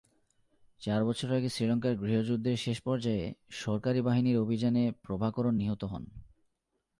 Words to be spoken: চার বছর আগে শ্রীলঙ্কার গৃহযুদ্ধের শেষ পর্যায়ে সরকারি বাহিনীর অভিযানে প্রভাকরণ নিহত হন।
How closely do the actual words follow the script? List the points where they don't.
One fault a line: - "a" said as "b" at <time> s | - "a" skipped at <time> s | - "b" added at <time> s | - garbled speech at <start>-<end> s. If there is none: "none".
none